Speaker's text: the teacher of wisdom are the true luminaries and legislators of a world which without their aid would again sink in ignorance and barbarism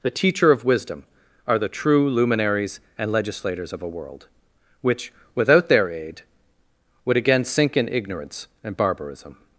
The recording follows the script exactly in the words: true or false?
true